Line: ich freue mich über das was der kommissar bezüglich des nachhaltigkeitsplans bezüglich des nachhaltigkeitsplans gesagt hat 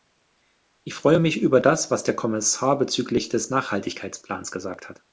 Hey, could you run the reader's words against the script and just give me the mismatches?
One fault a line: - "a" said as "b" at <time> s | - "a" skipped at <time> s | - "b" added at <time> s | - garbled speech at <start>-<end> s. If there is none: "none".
- "bezüglich des nachhaltigkeitsplans" skipped at 4.5 s